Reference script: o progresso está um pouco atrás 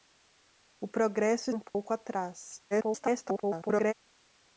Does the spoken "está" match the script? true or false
false